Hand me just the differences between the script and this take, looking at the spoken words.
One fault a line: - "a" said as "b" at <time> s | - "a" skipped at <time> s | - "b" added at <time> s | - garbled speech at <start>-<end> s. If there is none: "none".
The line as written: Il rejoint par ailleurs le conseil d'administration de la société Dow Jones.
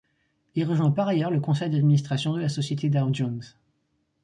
none